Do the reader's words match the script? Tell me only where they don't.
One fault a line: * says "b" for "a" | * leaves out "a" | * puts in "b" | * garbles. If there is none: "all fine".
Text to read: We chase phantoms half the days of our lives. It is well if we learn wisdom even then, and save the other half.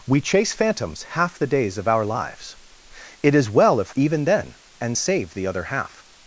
* leaves out "we learn wisdom"